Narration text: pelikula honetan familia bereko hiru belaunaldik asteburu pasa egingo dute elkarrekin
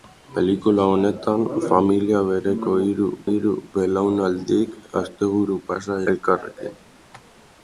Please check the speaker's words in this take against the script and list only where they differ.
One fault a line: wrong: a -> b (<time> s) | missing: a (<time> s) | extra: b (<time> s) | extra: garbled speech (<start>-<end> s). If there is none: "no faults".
extra: hiru (3.3 s)
missing: egingo dute (6.0 s)